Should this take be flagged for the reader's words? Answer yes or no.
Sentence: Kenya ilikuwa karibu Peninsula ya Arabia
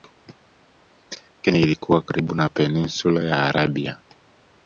yes